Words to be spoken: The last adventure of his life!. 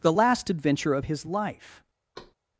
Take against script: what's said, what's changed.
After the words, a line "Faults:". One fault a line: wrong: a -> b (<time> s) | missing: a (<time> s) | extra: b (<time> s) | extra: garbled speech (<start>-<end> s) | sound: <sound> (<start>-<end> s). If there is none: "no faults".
The last adventure of his life!.
Faults:
sound: thud (2.1-2.3 s)